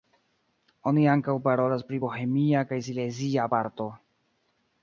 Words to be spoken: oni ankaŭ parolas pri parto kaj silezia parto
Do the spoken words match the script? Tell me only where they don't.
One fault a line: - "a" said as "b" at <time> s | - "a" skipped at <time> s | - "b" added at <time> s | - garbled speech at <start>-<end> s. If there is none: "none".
- "parto" said as "bohemia" at 2.0 s